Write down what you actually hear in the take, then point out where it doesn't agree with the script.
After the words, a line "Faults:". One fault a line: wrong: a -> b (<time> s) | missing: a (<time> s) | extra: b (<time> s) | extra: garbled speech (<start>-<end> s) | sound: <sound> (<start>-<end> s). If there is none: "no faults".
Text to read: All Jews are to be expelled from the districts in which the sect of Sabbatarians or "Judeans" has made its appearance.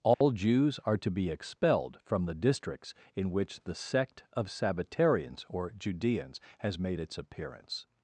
All Jews are to be expelled from the districts in which the sect of Sabbatarians or "Judeans" has made its appearance.
Faults:
sound: dropout (0.1-0.2 s)